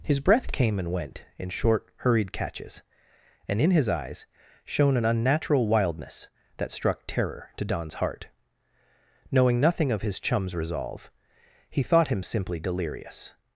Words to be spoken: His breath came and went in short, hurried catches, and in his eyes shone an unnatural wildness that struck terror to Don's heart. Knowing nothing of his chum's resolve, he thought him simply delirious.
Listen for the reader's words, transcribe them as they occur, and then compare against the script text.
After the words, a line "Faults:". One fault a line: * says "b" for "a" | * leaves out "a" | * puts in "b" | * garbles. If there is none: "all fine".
His breath came and went in short, hurried catches, and in his eyes shone an unnatural wildness that struck terror to Don's heart. Knowing nothing of his chum's resolve, he thought him simply delirious.
Faults:
all fine